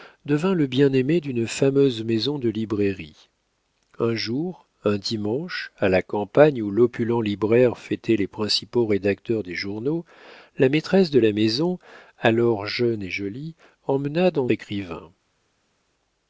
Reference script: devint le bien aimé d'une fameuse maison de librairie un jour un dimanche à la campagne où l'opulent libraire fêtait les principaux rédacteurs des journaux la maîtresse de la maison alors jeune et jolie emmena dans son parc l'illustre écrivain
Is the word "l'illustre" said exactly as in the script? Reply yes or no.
no